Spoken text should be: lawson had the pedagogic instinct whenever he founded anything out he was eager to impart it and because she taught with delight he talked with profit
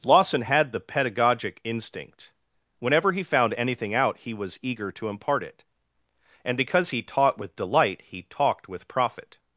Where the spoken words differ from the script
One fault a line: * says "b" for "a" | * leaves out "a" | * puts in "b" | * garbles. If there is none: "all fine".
* says "found" for "founded"
* says "he" for "she"